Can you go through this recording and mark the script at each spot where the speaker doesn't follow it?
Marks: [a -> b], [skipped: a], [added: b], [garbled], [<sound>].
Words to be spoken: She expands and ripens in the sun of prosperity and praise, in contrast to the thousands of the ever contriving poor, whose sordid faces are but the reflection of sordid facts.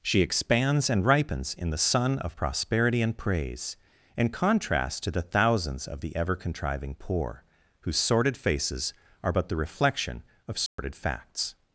She expands and ripens in the sun of prosperity and praise, in contrast to the thousands of the ever contriving poor, whose sordid faces are but the reflection of sordid [dropout] facts.